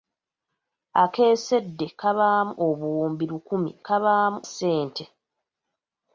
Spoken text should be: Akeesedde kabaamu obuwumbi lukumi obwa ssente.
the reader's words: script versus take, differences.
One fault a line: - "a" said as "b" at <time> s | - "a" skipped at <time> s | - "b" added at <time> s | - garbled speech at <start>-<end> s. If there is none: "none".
- "obwa" said as "kabaamu" at 3.8 s